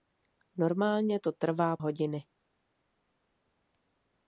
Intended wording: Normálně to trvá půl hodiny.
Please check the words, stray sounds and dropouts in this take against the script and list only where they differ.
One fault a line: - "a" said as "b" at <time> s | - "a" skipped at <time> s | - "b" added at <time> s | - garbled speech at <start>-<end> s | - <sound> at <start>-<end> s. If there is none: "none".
- "půl" skipped at 1.8 s